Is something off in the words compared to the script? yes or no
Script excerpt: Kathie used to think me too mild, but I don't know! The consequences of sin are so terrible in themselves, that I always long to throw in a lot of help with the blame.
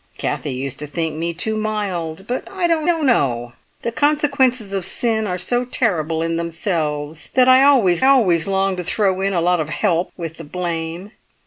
yes